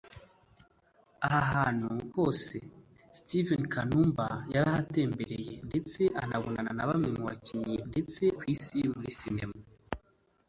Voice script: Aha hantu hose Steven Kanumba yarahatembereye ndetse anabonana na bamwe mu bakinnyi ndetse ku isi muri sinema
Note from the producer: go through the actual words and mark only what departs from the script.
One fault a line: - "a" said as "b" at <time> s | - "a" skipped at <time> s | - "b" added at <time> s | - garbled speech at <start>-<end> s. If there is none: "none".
none